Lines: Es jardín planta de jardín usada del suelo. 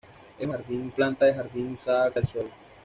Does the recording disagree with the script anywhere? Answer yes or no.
no